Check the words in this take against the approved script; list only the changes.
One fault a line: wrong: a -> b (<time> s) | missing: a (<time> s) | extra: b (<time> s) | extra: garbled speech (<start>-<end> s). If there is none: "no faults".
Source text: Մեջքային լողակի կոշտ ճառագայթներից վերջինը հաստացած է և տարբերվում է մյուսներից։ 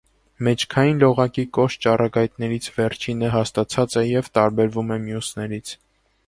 no faults